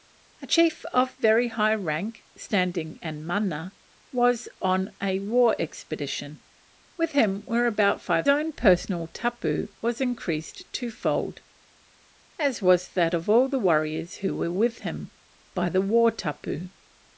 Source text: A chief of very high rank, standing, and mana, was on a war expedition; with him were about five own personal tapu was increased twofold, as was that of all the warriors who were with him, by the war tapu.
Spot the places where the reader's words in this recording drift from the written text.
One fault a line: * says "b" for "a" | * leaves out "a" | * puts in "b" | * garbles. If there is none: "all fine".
all fine